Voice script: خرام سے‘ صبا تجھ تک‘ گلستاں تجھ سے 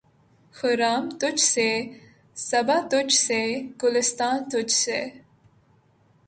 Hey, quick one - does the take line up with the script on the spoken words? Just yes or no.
no